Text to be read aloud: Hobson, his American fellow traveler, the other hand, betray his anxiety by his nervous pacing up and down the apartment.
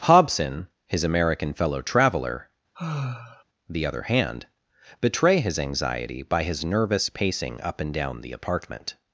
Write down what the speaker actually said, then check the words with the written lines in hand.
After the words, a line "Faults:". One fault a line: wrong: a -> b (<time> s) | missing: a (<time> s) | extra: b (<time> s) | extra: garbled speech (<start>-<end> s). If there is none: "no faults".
Hobson, his American fellow traveler, the other hand, betray his anxiety by his nervous pacing up and down the apartment.
Faults:
no faults